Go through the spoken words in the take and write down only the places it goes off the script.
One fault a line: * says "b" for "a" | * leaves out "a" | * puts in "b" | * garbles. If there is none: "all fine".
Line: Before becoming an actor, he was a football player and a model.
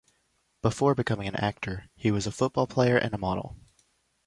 all fine